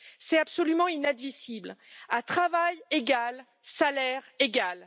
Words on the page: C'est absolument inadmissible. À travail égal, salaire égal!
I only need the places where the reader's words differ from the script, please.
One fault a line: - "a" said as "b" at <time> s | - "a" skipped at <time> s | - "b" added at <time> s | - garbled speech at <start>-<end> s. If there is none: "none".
none